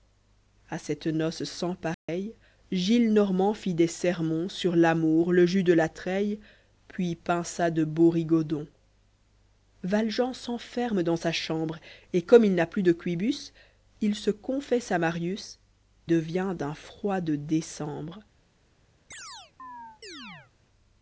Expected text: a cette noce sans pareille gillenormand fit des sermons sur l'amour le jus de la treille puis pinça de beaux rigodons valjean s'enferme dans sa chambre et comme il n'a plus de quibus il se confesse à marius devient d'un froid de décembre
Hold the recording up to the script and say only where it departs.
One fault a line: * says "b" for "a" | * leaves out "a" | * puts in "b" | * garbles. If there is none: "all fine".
all fine